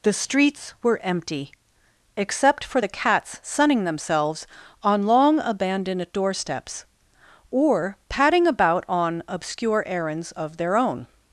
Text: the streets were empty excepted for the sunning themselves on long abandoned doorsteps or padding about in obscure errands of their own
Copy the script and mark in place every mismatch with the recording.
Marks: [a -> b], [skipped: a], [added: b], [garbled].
the streets were empty [excepted -> except] for the [added: cats] sunning themselves on long abandoned doorsteps or padding about [in -> on] obscure errands of their own